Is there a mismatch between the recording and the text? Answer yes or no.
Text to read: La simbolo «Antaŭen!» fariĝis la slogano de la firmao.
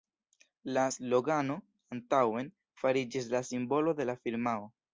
yes